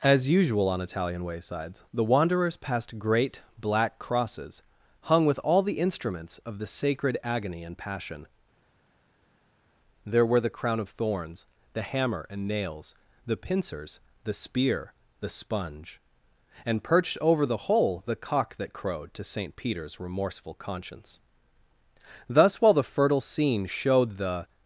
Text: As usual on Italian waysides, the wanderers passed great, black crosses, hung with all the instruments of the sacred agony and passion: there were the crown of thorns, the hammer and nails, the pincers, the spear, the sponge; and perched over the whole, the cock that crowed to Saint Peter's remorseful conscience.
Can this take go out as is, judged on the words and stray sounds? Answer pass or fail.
fail